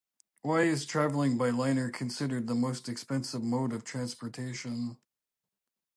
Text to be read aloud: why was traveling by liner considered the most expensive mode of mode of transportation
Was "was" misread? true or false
true